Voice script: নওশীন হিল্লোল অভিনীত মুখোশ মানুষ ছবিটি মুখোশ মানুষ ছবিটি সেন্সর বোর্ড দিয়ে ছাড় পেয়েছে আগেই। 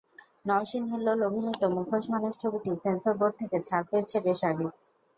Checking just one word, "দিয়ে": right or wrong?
wrong